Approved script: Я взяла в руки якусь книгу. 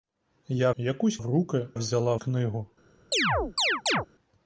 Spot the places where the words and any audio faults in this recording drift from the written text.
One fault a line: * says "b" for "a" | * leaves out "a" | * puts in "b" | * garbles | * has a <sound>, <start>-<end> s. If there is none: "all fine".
* says "якусь" for "взяла"
* says "взяла" for "якусь"
* has a chirp, 3.1-4.1 s